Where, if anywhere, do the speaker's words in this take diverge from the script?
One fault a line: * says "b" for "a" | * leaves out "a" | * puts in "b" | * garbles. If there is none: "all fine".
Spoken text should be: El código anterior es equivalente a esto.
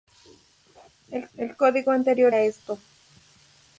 * puts in "el"
* leaves out "es equivalente"